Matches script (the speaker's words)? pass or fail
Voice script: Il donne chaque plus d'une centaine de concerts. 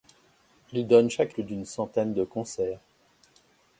pass